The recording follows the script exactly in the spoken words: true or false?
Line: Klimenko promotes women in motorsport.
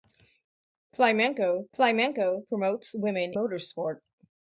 false